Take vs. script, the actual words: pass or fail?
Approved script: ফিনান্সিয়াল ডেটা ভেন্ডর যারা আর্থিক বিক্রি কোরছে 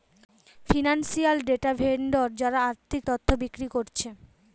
fail